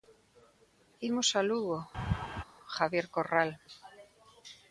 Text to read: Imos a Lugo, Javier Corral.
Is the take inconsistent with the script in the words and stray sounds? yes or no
yes